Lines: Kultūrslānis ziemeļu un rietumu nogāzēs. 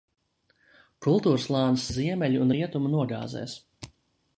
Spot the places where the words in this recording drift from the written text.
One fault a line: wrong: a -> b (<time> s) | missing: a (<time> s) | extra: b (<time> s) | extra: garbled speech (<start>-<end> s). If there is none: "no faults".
no faults